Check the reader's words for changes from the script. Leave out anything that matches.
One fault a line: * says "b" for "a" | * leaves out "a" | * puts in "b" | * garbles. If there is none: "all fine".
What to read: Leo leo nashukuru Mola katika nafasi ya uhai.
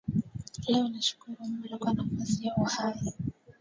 * leaves out "leo"
* says "kwa" for "katika"